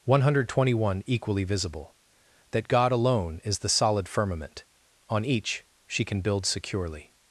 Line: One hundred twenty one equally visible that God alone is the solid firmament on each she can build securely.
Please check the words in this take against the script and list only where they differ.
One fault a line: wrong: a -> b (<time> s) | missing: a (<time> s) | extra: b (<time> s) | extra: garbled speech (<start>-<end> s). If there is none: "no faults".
no faults